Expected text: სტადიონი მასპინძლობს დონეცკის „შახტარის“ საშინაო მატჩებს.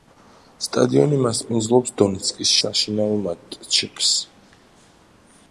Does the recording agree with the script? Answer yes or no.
no